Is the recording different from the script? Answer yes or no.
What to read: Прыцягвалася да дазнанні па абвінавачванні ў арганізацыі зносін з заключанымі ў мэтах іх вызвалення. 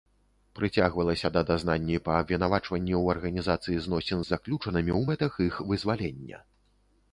no